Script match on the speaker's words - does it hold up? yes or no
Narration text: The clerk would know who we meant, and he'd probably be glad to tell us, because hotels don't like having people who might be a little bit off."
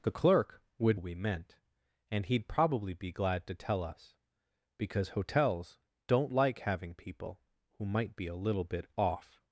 no